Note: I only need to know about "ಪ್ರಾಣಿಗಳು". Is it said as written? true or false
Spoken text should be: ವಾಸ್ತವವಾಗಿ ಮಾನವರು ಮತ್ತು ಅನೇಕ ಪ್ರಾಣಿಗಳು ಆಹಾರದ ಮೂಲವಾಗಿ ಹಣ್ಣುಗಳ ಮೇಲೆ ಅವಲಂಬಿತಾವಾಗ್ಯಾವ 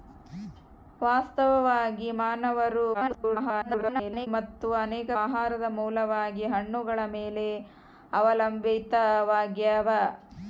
false